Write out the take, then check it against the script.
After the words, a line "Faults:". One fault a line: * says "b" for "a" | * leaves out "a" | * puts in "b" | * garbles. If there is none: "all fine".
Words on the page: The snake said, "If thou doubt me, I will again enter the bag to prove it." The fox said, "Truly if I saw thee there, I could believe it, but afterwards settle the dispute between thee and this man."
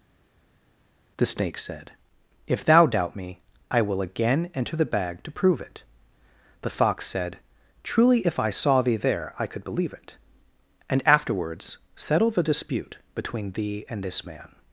The snake said, "If thou doubt me, I will again enter the bag to prove it." The fox said, "Truly if I saw thee there, I could believe it, and afterwards settle the dispute between thee and this man."
Faults:
* says "and" for "but"